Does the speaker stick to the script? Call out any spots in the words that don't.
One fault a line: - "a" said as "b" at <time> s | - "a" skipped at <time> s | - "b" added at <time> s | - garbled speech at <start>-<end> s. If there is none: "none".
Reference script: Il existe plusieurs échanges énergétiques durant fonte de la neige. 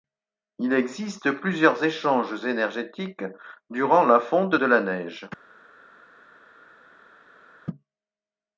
- "la" added at 4.0 s